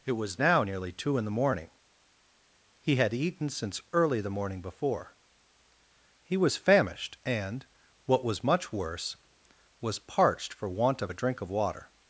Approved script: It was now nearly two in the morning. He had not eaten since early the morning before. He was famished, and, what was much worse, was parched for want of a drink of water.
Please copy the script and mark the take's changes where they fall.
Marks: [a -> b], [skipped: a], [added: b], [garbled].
It was now nearly two in the morning. He had [skipped: not] eaten since early the morning before. He was famished, and, what was much worse, was parched for want of a drink of water.